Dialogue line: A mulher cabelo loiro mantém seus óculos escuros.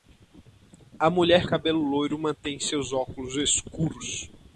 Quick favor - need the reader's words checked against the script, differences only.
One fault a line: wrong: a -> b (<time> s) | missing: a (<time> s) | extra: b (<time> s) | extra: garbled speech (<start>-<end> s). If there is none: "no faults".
no faults